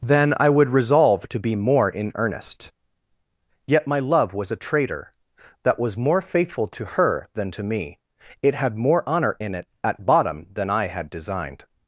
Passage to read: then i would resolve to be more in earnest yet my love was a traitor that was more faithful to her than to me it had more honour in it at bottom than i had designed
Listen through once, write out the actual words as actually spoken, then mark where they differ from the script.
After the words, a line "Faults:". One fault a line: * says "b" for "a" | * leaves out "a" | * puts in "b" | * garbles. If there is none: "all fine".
then i would resolve to be more in earnest yet my love was a traitor that was more faithful to her than to me it had more honour in it at bottom than i had designed
Faults:
all fine